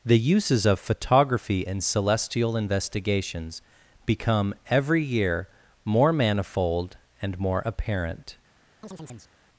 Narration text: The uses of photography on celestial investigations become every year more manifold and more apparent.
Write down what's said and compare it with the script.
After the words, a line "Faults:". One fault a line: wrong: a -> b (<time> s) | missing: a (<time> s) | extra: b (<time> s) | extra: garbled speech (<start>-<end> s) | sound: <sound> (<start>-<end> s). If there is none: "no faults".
The uses of photography in celestial investigations become every year more manifold and more apparent.
Faults:
wrong: on -> in (1.7 s)
sound: chirp (8.8-9.3 s)